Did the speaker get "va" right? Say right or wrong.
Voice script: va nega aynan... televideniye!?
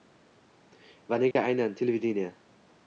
right